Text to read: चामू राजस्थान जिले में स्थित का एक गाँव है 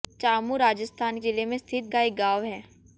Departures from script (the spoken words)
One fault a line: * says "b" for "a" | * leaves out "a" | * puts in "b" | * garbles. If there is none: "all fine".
all fine